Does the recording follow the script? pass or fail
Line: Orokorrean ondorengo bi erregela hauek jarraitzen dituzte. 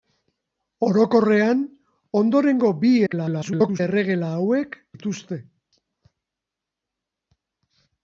fail